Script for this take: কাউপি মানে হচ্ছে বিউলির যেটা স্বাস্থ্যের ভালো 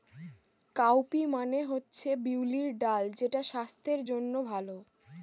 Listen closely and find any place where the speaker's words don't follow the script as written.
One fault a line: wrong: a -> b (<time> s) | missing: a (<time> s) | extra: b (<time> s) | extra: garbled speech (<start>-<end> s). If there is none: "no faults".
extra: ডাল (2.8 s)
extra: জন্য (4.1 s)